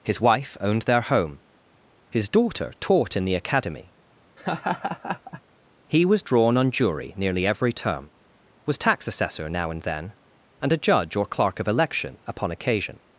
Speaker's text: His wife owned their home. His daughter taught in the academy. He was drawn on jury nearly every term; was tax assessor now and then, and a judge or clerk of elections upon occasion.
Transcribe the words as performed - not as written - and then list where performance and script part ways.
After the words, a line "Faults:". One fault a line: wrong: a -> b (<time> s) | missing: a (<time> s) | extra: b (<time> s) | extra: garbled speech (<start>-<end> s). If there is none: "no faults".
His wife owned their home. His daughter taught in the academy. He was drawn on jury nearly every term; was tax assessor now and then, and a judge or clerk of election upon occasion.
Faults:
wrong: elections -> election (11.7 s)